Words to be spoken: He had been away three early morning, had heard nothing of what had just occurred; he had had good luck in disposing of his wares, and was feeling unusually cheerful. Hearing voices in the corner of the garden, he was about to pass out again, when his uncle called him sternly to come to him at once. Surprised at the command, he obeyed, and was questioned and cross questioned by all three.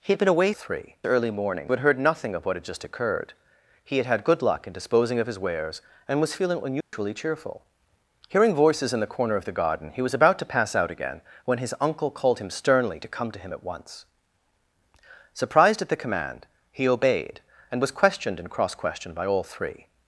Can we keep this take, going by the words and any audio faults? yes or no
no